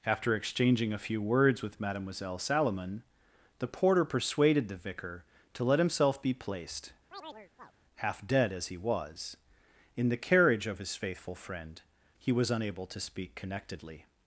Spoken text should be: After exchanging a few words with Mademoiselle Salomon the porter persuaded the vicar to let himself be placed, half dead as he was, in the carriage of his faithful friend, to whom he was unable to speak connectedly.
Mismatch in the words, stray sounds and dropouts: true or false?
true